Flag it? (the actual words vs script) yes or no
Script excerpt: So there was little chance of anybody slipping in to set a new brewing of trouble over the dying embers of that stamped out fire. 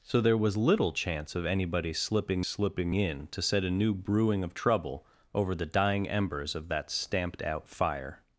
yes